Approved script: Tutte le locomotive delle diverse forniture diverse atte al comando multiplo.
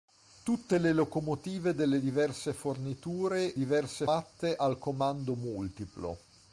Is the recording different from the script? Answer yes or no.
no